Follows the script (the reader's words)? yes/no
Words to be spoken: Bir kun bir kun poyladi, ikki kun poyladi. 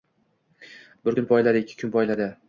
no